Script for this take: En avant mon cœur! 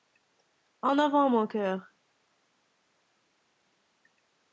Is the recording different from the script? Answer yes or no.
no